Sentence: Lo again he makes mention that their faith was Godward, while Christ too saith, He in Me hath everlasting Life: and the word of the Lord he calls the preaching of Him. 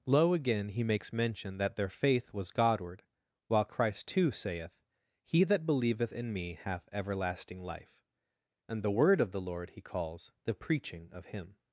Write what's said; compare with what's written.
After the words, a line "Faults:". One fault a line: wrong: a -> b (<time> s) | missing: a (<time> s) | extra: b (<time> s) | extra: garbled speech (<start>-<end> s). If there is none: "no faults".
Lo again he makes mention that their faith was Godward, while Christ too saith, He that believeth in Me hath everlasting Life: and the word of the Lord he calls the preaching of Him.
Faults:
extra: that believeth (5.4 s)